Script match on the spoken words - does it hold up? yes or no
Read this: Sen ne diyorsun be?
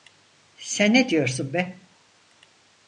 yes